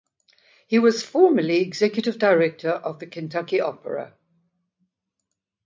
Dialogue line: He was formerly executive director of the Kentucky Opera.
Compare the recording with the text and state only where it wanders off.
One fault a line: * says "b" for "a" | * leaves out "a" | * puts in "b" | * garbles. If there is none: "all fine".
all fine